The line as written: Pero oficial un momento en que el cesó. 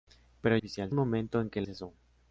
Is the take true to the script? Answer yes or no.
yes